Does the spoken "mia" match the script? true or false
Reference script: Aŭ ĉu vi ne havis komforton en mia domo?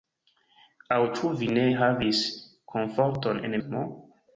false